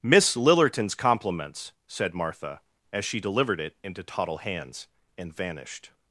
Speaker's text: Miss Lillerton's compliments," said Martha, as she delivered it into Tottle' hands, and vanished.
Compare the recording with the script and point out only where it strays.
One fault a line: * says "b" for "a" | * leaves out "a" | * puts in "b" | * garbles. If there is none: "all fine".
all fine